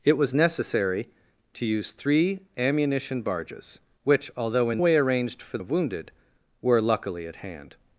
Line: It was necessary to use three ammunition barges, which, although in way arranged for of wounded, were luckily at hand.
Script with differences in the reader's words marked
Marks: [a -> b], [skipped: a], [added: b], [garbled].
It was necessary to use three ammunition barges, which, although in way arranged for of wounded, were luckily at hand.